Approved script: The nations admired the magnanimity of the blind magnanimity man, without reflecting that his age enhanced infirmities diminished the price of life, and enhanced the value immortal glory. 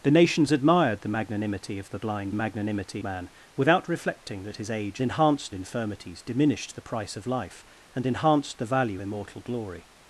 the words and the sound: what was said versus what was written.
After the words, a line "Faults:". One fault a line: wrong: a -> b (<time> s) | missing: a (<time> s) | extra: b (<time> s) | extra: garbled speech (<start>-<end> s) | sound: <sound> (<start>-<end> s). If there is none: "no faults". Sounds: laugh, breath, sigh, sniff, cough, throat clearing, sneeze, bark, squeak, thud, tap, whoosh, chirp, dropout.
The nations admired the magnanimity of the blind magnanimity man, without reflecting that his age enhanced infirmities diminished the price of life, and enhanced the value immortal glory.
Faults:
no faults